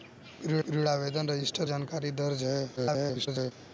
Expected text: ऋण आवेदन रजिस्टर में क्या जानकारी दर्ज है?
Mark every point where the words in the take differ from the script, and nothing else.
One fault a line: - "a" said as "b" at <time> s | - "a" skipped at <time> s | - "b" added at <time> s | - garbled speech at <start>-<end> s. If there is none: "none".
- "ऋण" added at 0.7 s
- "में क्या" skipped at 1.7 s
- garbled speech at 2.8-3.5 s